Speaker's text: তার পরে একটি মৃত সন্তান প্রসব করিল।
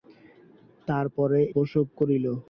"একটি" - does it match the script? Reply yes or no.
no